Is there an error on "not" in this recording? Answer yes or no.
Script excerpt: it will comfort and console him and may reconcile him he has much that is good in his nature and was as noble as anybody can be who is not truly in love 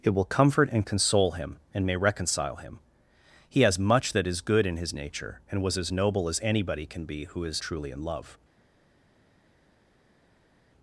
yes